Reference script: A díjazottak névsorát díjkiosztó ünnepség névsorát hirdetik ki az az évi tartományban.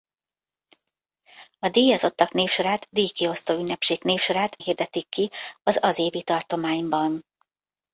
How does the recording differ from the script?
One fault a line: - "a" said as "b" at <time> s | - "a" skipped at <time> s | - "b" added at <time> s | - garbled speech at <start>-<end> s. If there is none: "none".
none